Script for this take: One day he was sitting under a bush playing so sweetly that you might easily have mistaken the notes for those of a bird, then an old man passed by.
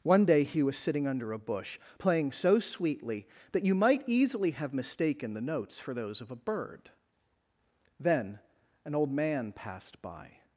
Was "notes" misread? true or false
false